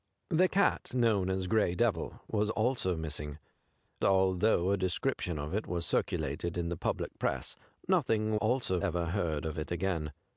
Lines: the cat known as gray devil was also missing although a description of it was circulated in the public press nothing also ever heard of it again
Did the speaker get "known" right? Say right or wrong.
right